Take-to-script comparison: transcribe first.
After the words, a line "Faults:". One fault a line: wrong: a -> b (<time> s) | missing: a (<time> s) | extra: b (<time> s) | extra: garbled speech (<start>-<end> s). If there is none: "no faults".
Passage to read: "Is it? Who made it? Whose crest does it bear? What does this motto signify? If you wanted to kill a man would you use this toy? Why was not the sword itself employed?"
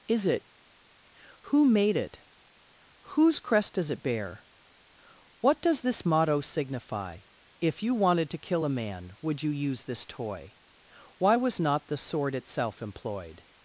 "Is it? Who made it? Whose crest does it bear? What does this motto signify? If you wanted to kill a man would you use this toy? Why was not the sword itself employed?"
Faults:
no faults